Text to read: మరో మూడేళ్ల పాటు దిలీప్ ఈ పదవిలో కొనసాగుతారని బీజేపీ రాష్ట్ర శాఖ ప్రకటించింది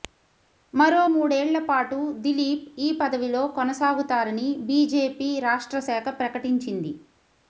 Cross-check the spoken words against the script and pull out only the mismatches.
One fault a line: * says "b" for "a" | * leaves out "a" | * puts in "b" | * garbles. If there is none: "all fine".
all fine